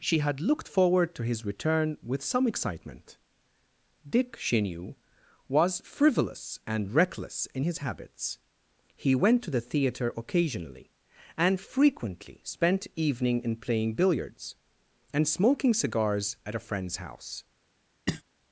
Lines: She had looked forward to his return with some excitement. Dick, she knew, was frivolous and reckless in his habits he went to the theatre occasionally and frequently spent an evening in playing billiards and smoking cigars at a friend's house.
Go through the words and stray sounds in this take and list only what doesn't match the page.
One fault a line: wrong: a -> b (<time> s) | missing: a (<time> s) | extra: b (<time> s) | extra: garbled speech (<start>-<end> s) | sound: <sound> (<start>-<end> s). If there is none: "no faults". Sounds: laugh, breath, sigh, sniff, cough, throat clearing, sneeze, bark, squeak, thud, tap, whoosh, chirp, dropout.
missing: an (12.9 s)
sound: cough (18.1-18.2 s)